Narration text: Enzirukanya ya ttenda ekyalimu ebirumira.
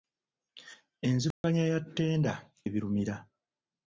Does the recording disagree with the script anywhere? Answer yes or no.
yes